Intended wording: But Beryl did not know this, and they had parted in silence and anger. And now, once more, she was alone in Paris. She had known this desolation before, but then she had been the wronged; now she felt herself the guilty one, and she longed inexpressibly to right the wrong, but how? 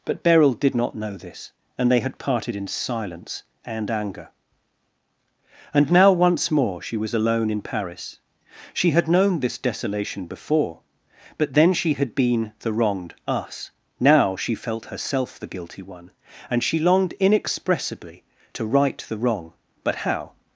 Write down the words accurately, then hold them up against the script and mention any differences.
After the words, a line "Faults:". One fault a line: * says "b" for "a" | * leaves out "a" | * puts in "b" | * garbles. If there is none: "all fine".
But Beryl did not know this, and they had parted in silence and anger. And now, once more, she was alone in Paris. She had known this desolation before, but then she had been the wronged; us now she felt herself the guilty one, and she longed inexpressibly to right the wrong, but how?
Faults:
* puts in "us"